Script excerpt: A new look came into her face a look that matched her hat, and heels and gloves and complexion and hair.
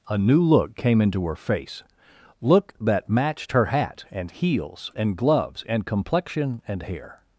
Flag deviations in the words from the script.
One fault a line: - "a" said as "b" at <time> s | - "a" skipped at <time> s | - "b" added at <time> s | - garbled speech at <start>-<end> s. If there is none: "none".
- "a" skipped at 1.8 s